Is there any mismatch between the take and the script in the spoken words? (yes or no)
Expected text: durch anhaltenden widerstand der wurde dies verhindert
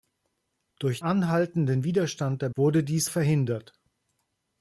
no